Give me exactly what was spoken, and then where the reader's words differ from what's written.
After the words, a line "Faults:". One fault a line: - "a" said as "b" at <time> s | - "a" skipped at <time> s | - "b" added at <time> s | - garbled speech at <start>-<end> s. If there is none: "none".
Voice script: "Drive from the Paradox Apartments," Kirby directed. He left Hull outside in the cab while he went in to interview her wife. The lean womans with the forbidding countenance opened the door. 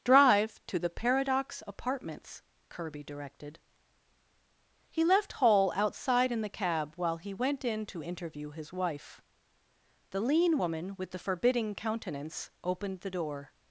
"Drive to the Paradox Apartments," Kirby directed. He left Hull outside in the cab while he went in to interview his wife. The lean woman with the forbidding countenance opened the door.
Faults:
- "from" said as "to" at 0.7 s
- "her" said as "his" at 8.5 s
- "womans" said as "woman" at 10.6 s